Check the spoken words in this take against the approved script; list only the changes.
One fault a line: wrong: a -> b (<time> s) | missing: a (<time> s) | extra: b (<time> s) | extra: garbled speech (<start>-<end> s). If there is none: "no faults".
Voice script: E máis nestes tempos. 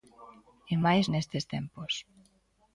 no faults